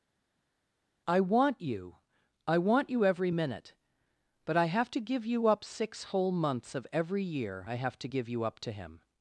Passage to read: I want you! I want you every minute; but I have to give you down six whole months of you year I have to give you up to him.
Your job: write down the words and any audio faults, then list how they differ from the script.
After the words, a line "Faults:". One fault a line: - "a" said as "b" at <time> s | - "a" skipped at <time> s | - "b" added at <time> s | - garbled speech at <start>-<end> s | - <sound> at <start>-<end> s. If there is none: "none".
I want you! I want you every minute; but I have to give you up six whole months of every year I have to give you up to him.
Faults:
- "down" said as "up" at 5.5 s
- "you" said as "every" at 6.9 s